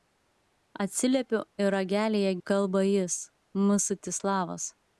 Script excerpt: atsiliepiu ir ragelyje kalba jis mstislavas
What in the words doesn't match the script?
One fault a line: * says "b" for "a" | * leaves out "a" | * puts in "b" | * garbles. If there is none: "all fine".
all fine